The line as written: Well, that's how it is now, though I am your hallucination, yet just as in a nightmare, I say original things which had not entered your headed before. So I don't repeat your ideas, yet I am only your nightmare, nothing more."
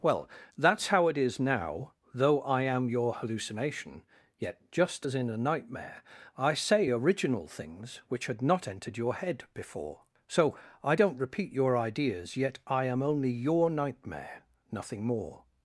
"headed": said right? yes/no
no